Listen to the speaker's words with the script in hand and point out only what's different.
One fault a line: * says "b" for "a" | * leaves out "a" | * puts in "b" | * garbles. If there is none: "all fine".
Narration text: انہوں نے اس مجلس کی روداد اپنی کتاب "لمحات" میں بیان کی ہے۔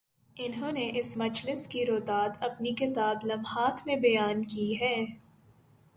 all fine